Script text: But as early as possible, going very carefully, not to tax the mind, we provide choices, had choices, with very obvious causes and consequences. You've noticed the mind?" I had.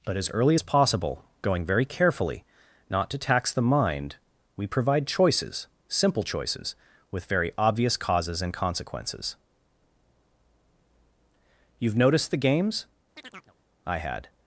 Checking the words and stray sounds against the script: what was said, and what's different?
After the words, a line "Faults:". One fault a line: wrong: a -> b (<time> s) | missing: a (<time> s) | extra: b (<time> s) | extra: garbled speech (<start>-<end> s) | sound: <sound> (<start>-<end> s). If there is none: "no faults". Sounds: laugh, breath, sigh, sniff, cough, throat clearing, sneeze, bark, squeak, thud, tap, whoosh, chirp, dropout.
But as early as possible, going very carefully, not to tax the mind, we provide choices, simple choices, with very obvious causes and consequences. You've noticed the games?" I had.
Faults:
wrong: had -> simple (5.9 s)
wrong: mind -> games (12.4 s)
sound: chirp (13.2-13.6 s)